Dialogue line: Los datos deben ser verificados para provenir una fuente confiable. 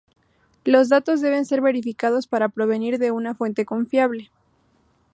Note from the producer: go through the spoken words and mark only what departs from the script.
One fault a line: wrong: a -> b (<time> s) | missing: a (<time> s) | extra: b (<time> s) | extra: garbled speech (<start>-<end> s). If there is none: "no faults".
extra: de (3.0 s)